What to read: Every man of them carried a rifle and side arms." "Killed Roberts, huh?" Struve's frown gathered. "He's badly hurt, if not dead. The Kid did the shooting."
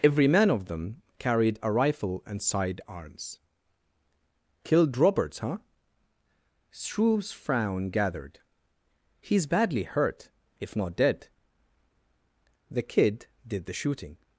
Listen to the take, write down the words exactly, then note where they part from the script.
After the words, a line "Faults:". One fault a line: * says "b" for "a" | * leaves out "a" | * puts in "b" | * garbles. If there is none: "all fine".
Every man of them carried a rifle and side arms." "Killed Roberts, huh?" Struve's frown gathered. "He's badly hurt, if not dead. The Kid did the shooting."
Faults:
all fine